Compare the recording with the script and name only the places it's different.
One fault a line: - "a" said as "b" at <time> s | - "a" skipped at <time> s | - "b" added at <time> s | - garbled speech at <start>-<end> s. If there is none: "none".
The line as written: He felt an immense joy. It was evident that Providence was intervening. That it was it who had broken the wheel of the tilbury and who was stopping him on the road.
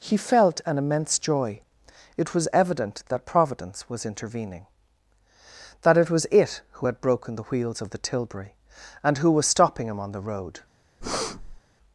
- "wheel" said as "wheels" at 7.4 s